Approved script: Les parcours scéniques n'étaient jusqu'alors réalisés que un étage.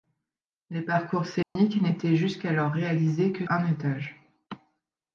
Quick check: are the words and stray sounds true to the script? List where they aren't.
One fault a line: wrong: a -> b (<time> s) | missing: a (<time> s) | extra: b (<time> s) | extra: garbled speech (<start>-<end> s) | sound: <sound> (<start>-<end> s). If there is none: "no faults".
sound: dropout (1.4-1.6 s)